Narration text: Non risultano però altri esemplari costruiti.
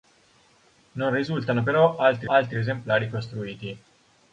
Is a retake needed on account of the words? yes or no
yes